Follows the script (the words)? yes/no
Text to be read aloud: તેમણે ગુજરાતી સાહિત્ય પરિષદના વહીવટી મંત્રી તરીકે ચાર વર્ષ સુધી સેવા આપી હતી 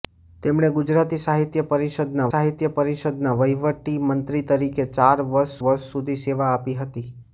no